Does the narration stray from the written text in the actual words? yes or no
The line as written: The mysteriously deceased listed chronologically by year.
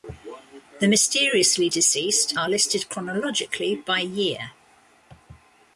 yes